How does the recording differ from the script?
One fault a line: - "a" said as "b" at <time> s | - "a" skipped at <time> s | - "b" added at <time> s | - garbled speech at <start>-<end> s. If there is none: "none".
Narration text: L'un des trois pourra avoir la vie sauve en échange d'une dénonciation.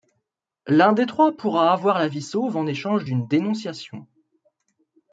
none